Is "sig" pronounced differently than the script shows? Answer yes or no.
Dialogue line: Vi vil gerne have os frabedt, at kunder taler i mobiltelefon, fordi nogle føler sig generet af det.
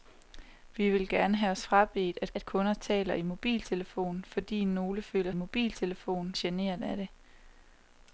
yes